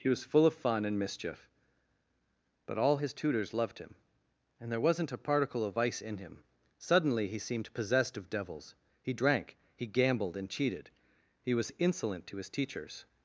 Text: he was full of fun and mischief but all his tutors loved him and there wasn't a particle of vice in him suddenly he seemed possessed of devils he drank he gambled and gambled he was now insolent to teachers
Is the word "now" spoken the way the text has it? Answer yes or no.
no